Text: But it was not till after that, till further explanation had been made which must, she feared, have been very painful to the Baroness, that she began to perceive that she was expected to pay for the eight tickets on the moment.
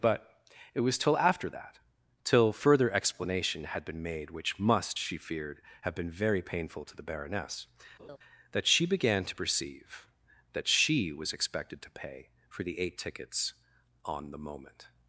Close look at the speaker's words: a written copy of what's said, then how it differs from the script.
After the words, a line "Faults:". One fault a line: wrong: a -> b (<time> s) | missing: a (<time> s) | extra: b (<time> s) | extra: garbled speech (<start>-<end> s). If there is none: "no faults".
But it was till after that, till further explanation had been made which must, she feared, have been very painful to the Baroness, that she began to perceive that she was expected to pay for the eight tickets on the moment.
Faults:
missing: not (1.0 s)